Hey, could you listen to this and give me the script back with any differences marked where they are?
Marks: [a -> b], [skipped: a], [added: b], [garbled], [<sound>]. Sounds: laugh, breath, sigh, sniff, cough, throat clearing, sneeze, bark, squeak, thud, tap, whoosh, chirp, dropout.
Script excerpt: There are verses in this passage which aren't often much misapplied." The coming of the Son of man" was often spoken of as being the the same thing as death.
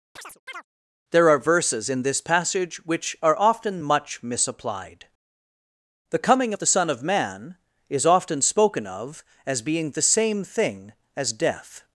[chirp] There are verses in this passage which [aren't -> are] often much misapplied." The coming of the Son of man" [was -> is] often spoken of as being the [skipped: the] same thing as death.